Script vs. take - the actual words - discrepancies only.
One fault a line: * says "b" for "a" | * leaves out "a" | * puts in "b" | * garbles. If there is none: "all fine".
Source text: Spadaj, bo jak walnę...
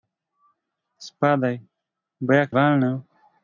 all fine